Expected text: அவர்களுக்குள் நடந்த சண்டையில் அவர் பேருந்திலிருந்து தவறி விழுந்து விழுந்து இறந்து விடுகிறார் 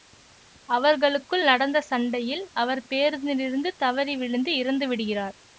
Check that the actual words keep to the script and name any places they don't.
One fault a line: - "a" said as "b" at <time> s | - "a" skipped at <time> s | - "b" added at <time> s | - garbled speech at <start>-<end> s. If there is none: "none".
- "விழுந்து" skipped at 4.5 s